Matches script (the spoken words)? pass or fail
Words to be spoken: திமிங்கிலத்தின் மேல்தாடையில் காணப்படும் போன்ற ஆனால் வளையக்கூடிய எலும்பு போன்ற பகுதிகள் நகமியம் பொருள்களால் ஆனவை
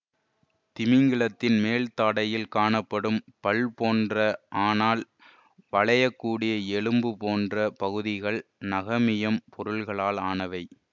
fail